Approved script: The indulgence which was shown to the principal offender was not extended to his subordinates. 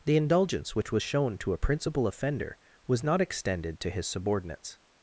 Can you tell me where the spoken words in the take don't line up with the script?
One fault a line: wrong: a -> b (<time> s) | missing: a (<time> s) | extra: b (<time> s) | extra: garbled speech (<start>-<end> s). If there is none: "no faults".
wrong: the -> a (1.5 s)